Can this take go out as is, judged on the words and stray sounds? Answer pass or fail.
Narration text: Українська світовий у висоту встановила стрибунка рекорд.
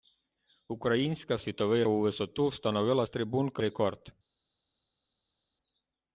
pass